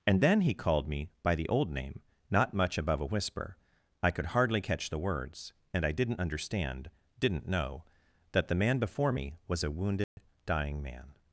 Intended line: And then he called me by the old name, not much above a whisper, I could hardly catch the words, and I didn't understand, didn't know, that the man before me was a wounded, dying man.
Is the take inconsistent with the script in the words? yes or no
no